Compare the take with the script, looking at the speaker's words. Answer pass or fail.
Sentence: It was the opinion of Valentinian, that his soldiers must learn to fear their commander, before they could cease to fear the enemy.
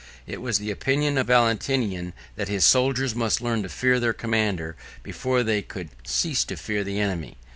pass